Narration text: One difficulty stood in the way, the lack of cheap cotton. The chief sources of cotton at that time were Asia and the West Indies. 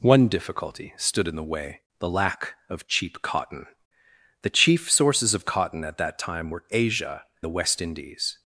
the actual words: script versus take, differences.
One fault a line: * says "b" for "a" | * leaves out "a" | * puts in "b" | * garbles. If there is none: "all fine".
* leaves out "and"